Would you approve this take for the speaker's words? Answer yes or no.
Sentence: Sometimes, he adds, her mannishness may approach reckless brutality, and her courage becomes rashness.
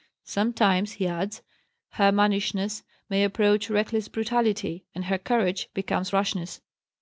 yes